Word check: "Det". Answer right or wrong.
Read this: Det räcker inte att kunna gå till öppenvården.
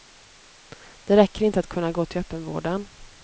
right